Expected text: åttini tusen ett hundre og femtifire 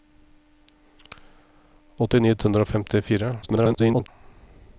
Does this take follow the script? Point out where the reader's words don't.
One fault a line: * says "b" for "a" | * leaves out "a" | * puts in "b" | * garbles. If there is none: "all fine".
* leaves out "tusen"
* garbles